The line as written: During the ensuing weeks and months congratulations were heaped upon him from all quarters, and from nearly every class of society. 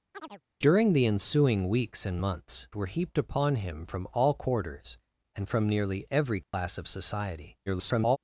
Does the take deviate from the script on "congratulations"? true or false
true